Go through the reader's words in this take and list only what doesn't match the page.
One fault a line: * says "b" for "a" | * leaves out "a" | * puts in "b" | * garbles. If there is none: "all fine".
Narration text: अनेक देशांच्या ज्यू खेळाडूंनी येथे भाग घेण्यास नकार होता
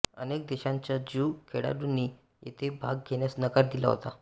* puts in "दिला"